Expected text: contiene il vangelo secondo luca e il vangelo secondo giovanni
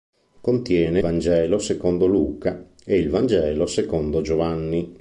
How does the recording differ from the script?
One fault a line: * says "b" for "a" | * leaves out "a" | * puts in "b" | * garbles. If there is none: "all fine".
* leaves out "il"